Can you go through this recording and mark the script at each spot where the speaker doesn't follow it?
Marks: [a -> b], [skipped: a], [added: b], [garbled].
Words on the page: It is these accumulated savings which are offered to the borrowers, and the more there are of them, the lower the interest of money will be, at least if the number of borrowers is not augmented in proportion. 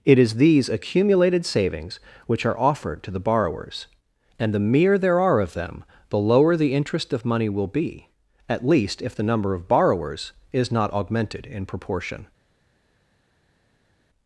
It is these accumulated savings which are offered to the borrowers, and the [more -> mere] there are of them, the lower the interest of money will be, at least if the number of borrowers is not augmented in proportion.